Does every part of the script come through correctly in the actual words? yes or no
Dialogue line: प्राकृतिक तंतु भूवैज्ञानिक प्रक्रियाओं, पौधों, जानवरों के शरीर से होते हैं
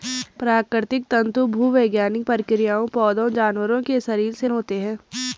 yes